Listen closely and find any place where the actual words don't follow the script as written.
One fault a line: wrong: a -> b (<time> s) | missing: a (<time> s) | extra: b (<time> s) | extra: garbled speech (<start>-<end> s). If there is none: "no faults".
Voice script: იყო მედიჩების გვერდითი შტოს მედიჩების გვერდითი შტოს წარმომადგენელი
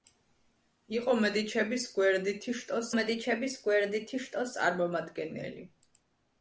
no faults